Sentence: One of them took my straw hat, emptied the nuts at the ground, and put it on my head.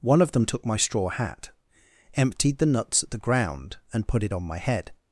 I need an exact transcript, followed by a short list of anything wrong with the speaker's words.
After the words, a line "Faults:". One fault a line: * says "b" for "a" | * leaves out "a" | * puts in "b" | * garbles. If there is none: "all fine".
One of them took my straw hat, emptied the nuts at the ground, and put it on my head.
Faults:
all fine